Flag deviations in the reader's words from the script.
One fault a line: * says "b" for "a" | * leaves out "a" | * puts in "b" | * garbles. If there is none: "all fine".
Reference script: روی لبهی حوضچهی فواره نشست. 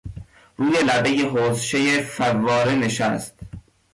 all fine